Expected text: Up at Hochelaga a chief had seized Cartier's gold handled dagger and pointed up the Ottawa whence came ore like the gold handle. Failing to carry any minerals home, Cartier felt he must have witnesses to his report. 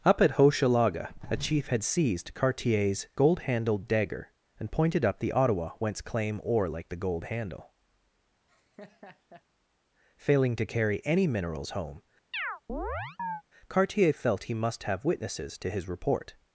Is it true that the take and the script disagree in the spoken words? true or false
true